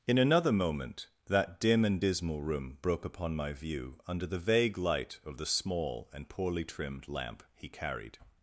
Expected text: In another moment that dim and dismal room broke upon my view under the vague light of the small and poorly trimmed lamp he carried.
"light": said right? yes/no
yes